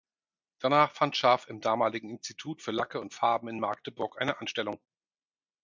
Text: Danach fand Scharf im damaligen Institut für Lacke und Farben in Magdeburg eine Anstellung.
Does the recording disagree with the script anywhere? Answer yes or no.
no